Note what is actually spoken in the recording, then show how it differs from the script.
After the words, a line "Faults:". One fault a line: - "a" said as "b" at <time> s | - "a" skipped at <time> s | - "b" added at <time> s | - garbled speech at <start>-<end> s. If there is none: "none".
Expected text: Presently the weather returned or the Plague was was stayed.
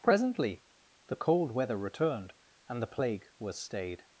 Presently the cold weather returned and the Plague was stayed.
Faults:
- "cold" added at 1.1 s
- "or" said as "and" at 2.7 s
- "was" skipped at 3.6 s